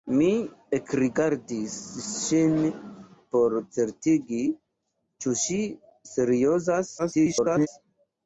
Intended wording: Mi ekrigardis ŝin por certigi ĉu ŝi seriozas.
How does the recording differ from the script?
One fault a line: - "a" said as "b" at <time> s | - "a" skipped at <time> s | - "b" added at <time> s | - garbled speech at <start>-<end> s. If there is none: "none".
- garbled speech at 7.0-7.7 s